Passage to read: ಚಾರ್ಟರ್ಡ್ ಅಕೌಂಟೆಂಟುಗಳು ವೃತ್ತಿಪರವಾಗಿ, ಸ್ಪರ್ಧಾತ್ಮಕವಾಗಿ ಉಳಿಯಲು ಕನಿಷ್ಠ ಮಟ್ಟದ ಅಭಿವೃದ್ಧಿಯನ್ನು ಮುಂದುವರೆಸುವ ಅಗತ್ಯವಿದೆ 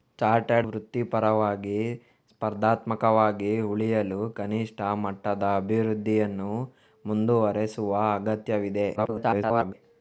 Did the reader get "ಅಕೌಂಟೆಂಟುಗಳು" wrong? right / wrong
wrong